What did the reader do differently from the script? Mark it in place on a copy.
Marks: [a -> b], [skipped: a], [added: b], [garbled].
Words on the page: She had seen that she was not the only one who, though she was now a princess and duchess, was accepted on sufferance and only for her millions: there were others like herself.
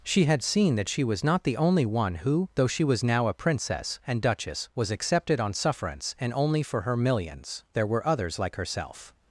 She had seen that she was not the only one who, though she was now a princess and duchess, was accepted on sufferance and only for her millions: there were others like herself.